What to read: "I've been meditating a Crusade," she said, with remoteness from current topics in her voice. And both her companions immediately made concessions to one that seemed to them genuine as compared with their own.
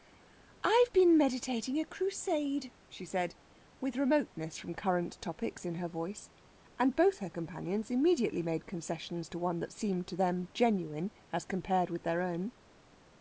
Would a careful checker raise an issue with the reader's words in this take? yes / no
no